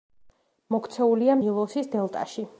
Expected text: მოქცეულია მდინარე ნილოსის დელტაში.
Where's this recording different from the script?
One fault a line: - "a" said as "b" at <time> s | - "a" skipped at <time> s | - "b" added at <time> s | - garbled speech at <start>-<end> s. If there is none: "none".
- "მდინარე" skipped at 1.4 s